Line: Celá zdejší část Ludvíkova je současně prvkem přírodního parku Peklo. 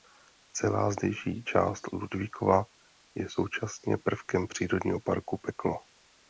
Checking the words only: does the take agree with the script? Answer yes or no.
yes